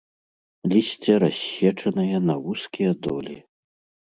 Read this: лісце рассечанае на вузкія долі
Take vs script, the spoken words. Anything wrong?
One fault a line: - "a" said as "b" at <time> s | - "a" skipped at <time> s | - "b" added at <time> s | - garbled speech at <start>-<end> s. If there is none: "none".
none